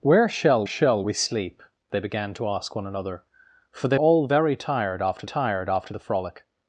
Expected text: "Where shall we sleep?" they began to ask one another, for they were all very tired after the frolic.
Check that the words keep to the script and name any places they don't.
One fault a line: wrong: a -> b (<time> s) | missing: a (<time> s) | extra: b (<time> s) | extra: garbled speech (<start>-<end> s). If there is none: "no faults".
extra: shall (0.6 s)
missing: were (4.0 s)
extra: tired after (5.2 s)